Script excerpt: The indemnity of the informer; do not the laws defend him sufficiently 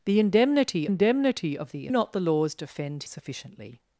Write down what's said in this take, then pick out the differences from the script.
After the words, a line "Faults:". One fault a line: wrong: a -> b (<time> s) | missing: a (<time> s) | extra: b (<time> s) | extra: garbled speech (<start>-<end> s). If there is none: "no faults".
The indemnity indemnity of the not the laws defend sufficiently
Faults:
extra: indemnity (0.8 s)
missing: informer do (1.9 s)
missing: him (3.0 s)